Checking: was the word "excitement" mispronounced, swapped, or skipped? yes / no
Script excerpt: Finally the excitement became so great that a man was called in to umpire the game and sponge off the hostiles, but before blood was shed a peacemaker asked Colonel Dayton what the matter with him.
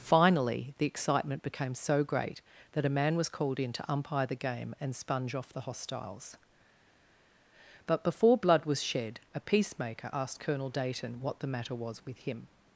no